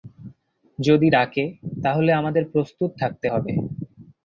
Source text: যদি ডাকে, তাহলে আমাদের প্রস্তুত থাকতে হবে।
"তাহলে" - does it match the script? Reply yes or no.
yes